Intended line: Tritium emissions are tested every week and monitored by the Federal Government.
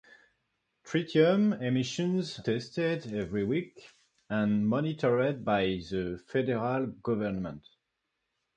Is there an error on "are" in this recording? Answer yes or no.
yes